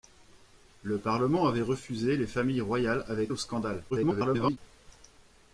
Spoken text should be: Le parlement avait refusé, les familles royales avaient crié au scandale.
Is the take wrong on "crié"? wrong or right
wrong